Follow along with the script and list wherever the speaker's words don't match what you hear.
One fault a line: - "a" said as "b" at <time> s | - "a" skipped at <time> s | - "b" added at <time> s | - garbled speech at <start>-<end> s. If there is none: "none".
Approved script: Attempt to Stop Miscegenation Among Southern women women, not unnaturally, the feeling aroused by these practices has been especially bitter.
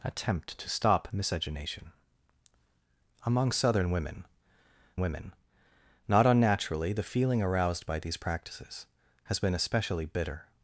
none